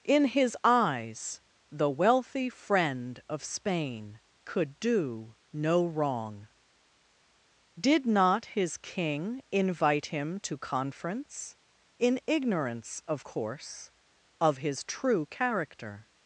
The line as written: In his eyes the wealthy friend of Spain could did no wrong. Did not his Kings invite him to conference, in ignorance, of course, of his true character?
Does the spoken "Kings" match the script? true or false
false